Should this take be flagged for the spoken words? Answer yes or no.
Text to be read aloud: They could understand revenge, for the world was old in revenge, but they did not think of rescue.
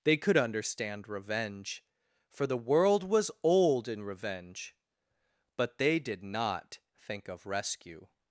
no